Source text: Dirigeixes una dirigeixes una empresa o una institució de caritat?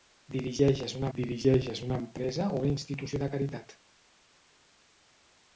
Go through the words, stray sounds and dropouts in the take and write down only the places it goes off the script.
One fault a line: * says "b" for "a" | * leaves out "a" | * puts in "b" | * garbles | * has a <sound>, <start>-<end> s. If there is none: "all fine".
all fine